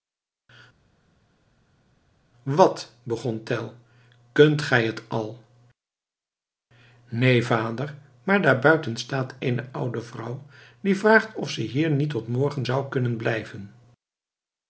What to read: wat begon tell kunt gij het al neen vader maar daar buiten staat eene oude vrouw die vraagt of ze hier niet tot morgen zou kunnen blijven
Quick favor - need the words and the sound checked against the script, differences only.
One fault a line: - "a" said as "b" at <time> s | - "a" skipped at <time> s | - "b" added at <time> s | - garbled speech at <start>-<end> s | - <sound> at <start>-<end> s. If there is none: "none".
none